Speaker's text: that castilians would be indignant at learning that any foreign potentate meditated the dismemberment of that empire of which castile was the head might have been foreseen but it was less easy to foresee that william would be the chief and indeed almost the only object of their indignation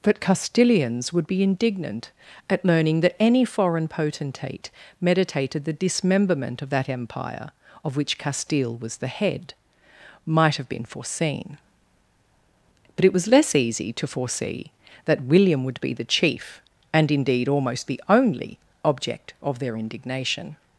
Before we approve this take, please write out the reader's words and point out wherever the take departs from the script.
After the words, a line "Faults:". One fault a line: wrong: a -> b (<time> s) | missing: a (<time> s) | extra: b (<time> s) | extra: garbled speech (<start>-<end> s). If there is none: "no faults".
but castilians would be indignant at learning that any foreign potentate meditated the dismemberment of that empire of which castile was the head might have been foreseen but it was less easy to foresee that william would be the chief and indeed almost the only object of their indignation
Faults:
wrong: that -> but (0.0 s)